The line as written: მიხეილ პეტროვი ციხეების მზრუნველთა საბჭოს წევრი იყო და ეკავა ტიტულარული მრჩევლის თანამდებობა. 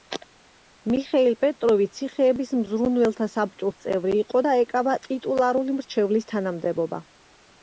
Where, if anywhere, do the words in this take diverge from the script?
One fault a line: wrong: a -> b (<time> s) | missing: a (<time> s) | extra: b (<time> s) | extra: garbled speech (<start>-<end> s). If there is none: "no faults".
no faults